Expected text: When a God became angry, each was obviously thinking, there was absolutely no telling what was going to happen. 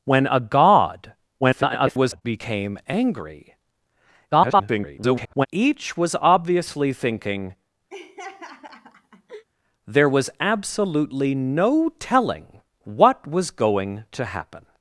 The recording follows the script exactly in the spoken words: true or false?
false